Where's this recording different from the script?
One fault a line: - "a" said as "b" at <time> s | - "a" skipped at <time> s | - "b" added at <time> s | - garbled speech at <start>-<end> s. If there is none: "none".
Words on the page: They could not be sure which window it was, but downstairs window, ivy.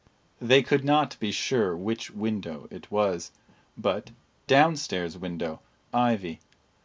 none